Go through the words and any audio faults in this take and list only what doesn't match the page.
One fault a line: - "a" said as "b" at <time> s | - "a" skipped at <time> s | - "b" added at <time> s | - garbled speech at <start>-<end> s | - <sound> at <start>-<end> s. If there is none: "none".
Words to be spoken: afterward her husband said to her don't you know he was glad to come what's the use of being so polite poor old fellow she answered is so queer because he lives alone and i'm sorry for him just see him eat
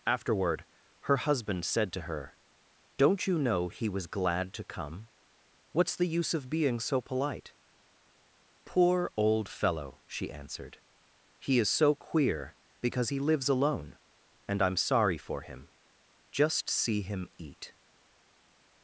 - "he" added at 11.4 s